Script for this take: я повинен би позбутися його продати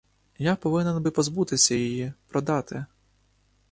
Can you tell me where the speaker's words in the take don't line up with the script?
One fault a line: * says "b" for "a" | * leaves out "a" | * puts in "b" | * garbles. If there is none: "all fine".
* says "її" for "його"